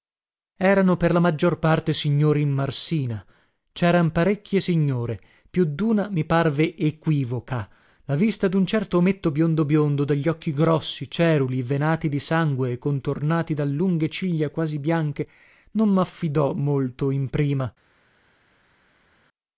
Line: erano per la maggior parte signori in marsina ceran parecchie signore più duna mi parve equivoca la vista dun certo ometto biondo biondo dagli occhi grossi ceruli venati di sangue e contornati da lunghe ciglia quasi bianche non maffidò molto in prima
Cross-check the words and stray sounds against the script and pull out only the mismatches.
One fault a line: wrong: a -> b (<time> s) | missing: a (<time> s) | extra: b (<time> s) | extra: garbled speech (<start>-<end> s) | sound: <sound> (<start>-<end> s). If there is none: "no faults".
no faults